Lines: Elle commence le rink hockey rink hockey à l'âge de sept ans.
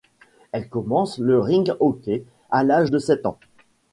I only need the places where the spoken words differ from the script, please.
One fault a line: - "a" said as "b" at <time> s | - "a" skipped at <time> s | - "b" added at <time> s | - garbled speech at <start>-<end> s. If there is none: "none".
- "rink hockey" skipped at 2.2 s